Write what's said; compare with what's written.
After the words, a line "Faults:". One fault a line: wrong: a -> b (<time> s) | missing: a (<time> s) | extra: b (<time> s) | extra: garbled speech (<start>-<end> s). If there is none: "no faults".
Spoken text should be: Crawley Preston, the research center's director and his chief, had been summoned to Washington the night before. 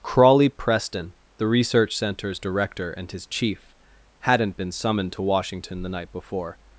Crawley Preston, the research center's director and his chief, hadn't been summoned to Washington the night before.
Faults:
wrong: had -> hadn't (4.2 s)